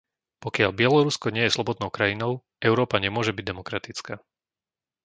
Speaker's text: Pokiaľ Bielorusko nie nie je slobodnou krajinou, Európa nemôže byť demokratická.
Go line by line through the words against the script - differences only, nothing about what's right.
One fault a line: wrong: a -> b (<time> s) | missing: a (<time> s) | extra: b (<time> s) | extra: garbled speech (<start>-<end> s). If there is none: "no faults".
missing: nie (1.4 s)